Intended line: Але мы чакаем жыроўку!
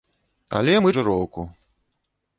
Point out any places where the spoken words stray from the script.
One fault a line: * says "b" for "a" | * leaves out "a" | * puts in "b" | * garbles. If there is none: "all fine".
* leaves out "чакаем"